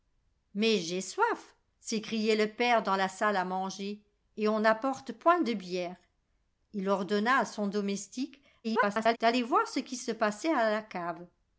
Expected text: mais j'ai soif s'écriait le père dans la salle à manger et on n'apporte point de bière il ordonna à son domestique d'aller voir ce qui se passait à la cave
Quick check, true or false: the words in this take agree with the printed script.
false